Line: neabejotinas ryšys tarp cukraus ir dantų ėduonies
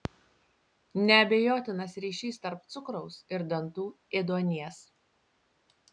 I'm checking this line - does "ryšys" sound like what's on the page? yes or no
yes